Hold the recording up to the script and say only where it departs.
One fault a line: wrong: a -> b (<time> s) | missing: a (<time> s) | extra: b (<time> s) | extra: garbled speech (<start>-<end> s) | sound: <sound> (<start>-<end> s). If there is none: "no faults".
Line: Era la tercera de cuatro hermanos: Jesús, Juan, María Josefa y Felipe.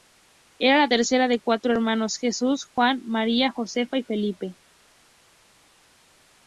no faults